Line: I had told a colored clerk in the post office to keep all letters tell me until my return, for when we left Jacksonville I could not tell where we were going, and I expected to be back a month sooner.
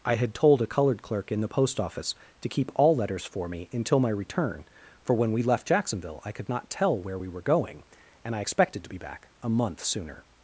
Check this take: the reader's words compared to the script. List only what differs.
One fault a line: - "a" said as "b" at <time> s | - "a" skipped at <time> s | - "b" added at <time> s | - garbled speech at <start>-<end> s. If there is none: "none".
- "tell" said as "for" at 3.2 s